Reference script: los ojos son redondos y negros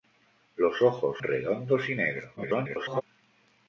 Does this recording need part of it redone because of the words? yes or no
yes